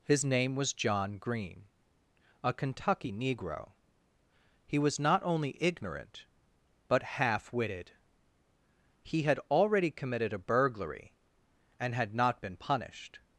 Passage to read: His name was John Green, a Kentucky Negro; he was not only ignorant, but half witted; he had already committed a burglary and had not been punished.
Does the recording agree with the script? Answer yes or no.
yes